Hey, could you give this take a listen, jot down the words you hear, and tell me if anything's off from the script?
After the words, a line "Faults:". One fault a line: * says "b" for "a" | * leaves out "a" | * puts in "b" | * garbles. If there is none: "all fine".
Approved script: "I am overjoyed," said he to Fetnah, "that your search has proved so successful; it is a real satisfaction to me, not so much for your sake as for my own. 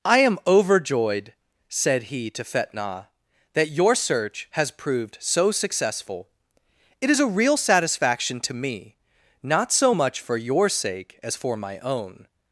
"I am overjoyed," said he to Fetnah, "that your search has proved so successful; it is a real satisfaction to me, not so much for your sake as for my own.
Faults:
all fine